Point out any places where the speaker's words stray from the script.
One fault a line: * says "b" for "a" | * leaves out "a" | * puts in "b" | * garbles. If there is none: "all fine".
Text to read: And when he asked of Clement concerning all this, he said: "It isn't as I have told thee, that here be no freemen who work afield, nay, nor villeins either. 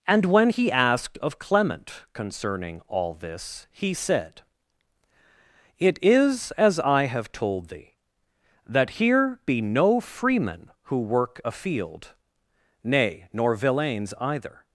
* says "is" for "isn't"